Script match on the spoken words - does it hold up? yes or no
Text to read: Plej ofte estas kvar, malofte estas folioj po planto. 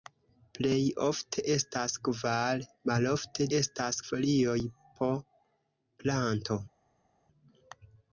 yes